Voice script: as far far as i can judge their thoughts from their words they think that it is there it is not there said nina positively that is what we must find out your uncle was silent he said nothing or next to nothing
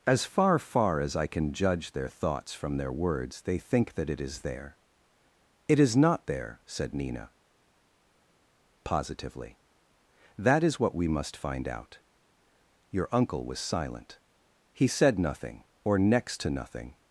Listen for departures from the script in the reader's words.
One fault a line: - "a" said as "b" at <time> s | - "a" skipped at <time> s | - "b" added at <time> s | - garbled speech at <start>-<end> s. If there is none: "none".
none